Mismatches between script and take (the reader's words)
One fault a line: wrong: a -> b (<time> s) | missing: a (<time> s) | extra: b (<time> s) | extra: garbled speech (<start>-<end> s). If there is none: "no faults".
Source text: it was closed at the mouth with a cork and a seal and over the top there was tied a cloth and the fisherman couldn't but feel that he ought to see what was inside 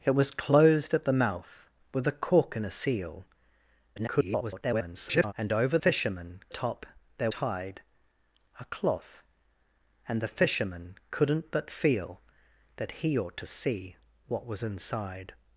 extra: garbled speech (4.0-5.3 s)
wrong: the -> fisherman (5.8 s)
missing: was (7.3 s)